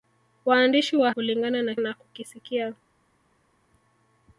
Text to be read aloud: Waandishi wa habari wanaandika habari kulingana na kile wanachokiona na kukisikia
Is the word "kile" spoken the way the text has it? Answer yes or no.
no